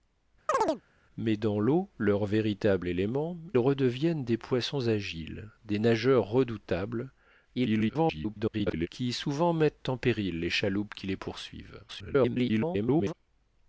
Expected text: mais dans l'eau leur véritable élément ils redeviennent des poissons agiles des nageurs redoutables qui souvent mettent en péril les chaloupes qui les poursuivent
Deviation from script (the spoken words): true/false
true